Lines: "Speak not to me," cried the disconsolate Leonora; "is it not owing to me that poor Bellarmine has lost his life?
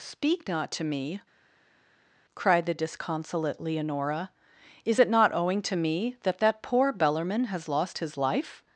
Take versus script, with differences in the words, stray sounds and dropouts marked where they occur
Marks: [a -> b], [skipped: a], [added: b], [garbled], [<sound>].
"Speak not to me," cried the disconsolate Leonora; "is it not owing to me that [added: that] poor Bellarmine has lost his life?